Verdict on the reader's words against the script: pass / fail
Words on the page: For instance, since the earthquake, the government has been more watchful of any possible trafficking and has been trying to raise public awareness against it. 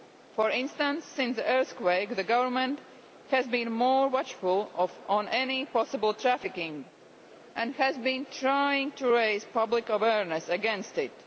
pass